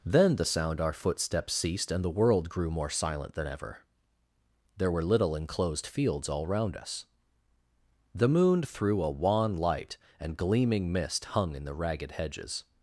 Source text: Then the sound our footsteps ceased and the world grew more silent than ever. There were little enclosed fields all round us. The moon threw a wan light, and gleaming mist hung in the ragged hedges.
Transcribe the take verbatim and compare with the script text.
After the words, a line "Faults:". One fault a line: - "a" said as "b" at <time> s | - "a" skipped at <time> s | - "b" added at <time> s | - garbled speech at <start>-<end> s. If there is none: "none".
Then the sound our footsteps ceased and the world grew more silent than ever. There were little enclosed fields all round us. The moon threw a wan light, and gleaming mist hung in the ragged hedges.
Faults:
none